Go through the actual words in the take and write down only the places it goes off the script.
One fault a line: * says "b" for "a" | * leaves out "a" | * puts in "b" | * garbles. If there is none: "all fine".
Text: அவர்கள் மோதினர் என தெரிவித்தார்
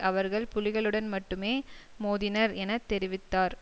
* puts in "புலிகளுடன் மட்டுமே"